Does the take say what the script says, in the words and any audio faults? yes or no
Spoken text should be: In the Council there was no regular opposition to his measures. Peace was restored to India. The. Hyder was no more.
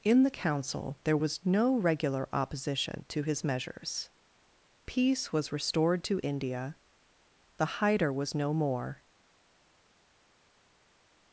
yes